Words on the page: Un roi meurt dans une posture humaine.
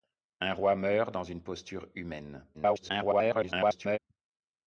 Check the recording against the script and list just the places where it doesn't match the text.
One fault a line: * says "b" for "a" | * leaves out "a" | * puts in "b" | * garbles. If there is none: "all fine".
* garbles